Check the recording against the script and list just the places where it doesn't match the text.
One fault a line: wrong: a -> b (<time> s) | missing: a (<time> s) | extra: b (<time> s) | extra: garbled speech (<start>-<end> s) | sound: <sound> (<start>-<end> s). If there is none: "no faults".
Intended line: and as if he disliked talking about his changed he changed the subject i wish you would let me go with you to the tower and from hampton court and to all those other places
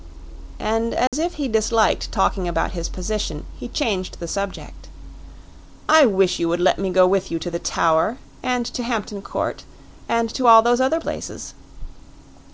sound: dropout (1.1-1.1 s)
wrong: changed -> position (2.9 s)
wrong: from -> to (8.7 s)